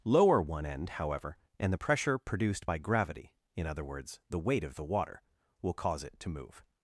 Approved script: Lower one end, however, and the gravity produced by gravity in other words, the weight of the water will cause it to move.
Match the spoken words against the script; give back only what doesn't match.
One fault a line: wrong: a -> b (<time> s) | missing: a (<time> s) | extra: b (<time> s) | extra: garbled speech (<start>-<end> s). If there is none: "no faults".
wrong: gravity -> pressure (1.8 s)